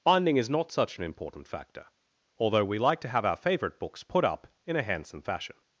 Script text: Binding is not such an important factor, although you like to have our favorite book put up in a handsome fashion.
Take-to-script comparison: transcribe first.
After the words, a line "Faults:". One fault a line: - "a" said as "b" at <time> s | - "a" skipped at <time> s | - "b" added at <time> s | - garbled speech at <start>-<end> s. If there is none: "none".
Binding is not such an important factor, although we like to have our favorite books put up in a handsome fashion.
Faults:
- "you" said as "we" at 2.6 s
- "book" said as "books" at 3.8 s